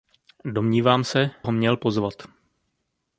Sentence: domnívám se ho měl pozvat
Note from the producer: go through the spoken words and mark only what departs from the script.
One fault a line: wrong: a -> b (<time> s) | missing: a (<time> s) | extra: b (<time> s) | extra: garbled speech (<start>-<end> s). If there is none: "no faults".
no faults